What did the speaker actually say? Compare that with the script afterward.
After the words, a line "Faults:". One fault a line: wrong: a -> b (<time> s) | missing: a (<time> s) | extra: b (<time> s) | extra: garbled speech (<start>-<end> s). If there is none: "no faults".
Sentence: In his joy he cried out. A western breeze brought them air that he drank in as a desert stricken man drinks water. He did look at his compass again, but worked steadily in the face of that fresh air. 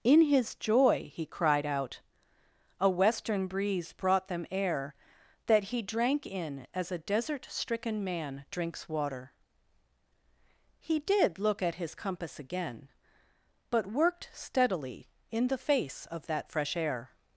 In his joy he cried out. A western breeze brought them air that he drank in as a desert stricken man drinks water. He did look at his compass again, but worked steadily in the face of that fresh air.
Faults:
no faults